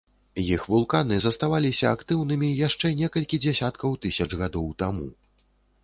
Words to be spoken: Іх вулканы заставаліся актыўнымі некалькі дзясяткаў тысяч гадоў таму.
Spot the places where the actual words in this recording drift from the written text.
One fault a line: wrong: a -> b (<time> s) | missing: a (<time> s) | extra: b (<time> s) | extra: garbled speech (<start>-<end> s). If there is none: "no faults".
extra: яшчэ (2.7 s)